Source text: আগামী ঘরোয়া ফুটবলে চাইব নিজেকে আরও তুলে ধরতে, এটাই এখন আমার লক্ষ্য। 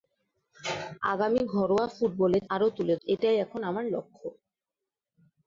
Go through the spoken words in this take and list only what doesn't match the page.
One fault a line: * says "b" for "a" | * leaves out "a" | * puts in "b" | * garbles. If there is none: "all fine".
* leaves out "চাইব নিজেকে"
* leaves out "ধরতে"